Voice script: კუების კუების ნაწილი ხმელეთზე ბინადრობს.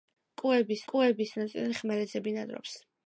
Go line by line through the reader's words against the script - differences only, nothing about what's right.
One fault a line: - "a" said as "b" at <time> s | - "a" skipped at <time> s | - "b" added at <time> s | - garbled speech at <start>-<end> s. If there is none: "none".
none